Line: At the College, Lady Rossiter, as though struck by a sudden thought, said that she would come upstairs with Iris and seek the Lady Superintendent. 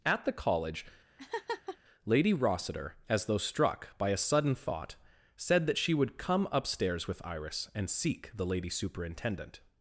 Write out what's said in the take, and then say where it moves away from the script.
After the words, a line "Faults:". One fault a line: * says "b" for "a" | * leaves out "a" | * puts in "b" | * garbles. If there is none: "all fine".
At the College, Lady Rossiter, as though struck by a sudden thought, said that she would come upstairs with Iris and seek the Lady Superintendent.
Faults:
all fine